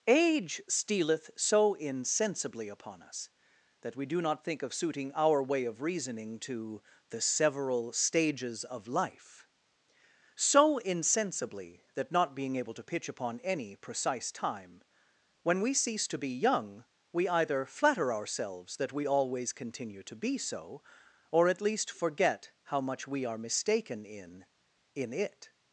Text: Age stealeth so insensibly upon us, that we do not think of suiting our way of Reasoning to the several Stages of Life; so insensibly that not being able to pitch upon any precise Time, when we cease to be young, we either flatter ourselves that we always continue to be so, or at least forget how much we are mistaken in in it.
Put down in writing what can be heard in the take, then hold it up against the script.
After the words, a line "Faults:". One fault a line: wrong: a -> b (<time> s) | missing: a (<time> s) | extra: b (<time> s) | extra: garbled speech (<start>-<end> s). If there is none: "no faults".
Age stealeth so insensibly upon us, that we do not think of suiting our way of Reasoning to the several Stages of Life; so insensibly that not being able to pitch upon any precise Time, when we cease to be young, we either flatter ourselves that we always continue to be so, or at least forget how much we are mistaken in in it.
Faults:
no faults